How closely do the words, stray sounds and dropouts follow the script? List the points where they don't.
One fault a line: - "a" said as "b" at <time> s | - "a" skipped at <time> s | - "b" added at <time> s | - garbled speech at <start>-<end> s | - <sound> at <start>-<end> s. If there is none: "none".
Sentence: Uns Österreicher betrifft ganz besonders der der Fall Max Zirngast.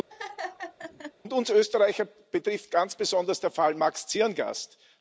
- laugh at 0.1-1.1 s
- "der" skipped at 3.5 s